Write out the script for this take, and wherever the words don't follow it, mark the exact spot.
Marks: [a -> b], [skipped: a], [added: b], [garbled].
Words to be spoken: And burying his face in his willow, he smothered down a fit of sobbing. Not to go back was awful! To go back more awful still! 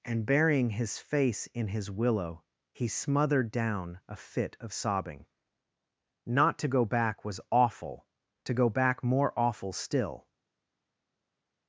And burying his face in his willow, he smothered down a fit of sobbing. Not to go back was awful! To go back more awful still!